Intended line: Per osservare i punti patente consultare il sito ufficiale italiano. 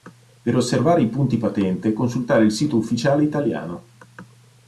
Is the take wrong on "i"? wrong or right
right